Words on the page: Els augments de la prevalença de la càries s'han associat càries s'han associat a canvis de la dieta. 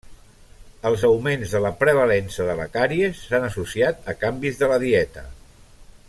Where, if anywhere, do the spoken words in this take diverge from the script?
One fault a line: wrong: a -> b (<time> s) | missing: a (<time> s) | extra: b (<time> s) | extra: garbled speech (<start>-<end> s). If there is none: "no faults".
missing: càries s'han associat (4.1 s)